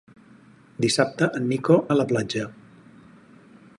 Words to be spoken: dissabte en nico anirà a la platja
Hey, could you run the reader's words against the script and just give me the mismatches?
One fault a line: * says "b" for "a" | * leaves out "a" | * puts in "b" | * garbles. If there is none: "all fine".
* leaves out "anirà"